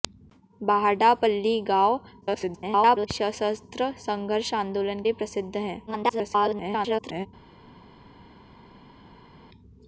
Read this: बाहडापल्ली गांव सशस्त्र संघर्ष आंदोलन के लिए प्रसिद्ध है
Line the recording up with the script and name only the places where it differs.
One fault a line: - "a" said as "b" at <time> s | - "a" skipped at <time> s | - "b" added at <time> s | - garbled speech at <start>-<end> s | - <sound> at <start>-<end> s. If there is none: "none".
- garbled speech at 2.2-3.1 s
- "के" skipped at 5.0 s
- garbled speech at 5.9-7.3 s